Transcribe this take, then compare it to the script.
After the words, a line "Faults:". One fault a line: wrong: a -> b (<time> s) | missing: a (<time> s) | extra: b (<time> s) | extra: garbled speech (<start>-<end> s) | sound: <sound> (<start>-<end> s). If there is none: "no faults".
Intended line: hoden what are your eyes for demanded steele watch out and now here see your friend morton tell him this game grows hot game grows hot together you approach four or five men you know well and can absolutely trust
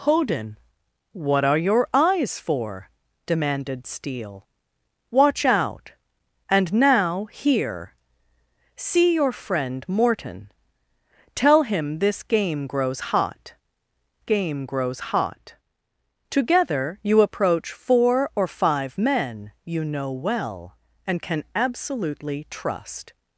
hoden what are your eyes for demanded steele watch out and now here see your friend morton tell him this game grows hot game grows hot together you approach four or five men you know well and can absolutely trust
Faults:
no faults